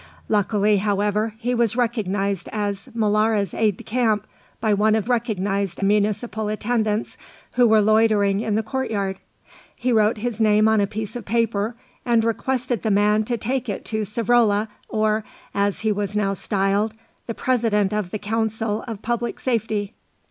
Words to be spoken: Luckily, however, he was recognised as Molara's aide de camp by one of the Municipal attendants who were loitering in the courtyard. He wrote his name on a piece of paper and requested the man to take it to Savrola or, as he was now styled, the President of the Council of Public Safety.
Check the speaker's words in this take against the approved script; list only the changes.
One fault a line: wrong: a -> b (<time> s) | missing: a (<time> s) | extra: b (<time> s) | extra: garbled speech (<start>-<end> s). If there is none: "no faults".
wrong: the -> recognised (5.1 s)